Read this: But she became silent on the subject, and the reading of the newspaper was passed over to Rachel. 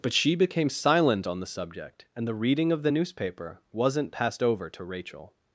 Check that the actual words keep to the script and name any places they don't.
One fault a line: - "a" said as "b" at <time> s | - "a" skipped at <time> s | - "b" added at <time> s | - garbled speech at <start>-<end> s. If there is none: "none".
- "was" said as "wasn't" at 3.7 s